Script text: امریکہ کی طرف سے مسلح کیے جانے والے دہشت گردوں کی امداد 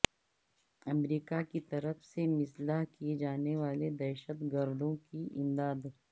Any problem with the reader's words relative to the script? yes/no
no